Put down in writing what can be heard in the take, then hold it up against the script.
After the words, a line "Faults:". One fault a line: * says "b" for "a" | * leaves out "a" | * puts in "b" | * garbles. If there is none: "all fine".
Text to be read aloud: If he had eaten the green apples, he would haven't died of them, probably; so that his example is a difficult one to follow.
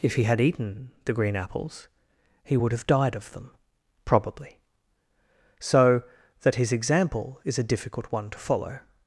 If he had eaten the green apples, he would have died of them, probably; so that his example is a difficult one to follow.
Faults:
* says "have" for "haven't"